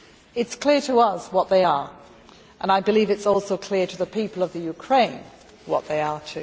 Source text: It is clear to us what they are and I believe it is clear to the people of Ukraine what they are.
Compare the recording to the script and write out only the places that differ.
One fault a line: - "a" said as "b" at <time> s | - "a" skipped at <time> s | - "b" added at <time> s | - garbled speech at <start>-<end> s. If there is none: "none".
- "also" added at 3.3 s